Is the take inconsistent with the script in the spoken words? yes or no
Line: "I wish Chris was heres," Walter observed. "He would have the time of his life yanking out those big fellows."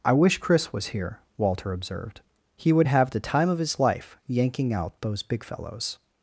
yes